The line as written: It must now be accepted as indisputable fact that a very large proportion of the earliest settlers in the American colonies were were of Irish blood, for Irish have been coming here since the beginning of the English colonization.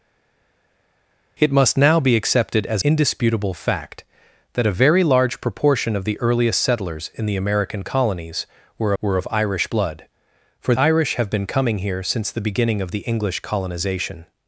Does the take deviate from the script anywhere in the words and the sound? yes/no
no